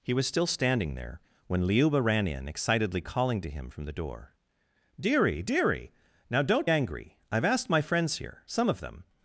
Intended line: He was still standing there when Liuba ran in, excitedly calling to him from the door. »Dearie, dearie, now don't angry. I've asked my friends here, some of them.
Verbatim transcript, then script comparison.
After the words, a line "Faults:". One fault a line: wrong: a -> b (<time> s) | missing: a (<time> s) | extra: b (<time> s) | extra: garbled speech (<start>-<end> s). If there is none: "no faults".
He was still standing there when Liuba ran in, excitedly calling to him from the door. »Dearie, dearie, now don't angry. I've asked my friends here, some of them.
Faults:
no faults